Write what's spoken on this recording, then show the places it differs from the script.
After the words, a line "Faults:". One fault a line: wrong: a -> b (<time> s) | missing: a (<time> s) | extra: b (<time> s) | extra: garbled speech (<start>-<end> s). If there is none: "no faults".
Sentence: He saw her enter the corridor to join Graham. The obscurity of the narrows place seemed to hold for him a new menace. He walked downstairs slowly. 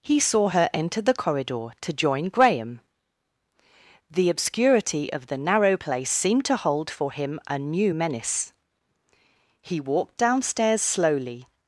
He saw her enter the corridor to join Graham. The obscurity of the narrow place seemed to hold for him a new menace. He walked downstairs slowly.
Faults:
wrong: narrows -> narrow (5.4 s)